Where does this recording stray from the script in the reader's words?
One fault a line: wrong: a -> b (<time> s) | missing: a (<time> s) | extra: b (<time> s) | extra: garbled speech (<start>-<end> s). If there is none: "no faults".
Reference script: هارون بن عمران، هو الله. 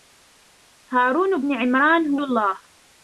no faults